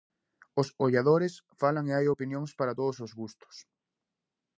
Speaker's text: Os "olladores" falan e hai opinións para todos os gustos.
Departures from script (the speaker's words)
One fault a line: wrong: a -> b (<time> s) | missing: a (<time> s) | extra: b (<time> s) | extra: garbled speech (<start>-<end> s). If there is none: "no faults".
no faults